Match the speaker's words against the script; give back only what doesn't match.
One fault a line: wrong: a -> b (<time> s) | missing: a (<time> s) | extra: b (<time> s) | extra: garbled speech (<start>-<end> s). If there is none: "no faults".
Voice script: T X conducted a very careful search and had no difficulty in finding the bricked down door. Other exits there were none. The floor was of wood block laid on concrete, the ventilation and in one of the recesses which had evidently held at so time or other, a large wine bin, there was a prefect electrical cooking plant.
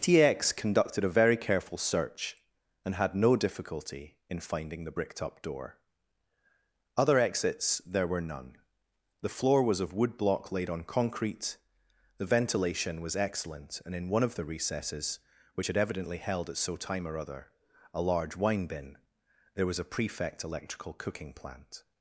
wrong: down -> up (5.2 s)
extra: was excellent (13.0 s)